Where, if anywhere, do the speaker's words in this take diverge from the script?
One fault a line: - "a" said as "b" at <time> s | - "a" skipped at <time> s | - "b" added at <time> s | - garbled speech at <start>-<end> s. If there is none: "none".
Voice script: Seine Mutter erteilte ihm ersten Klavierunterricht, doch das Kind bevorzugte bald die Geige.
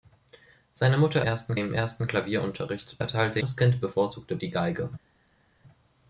- "erteilte" said as "ersten" at 1.2 s
- "doch" said as "erteilte" at 3.0 s
- "bald" skipped at 4.4 s